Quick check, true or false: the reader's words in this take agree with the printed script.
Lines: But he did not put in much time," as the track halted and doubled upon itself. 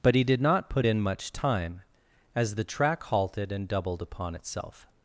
true